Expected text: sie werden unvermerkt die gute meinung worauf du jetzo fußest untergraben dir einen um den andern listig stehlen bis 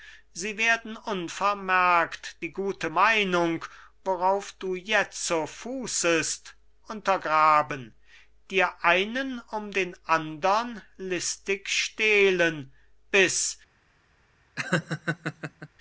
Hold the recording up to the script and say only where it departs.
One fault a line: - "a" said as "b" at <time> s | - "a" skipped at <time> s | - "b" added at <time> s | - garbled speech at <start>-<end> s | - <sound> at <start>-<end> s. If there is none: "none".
- laugh at 14.6-15.7 s